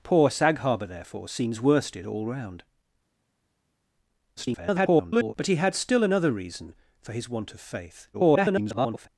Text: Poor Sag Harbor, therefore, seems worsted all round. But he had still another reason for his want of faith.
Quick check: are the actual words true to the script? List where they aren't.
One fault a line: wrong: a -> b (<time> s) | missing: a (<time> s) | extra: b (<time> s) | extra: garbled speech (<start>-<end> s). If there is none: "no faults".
extra: garbled speech (4.4-5.3 s)
extra: garbled speech (8.1-9.1 s)